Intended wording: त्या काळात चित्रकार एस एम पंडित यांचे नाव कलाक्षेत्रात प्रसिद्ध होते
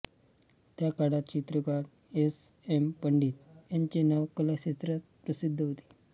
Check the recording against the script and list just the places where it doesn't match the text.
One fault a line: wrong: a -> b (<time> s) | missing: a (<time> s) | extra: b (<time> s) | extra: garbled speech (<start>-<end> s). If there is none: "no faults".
no faults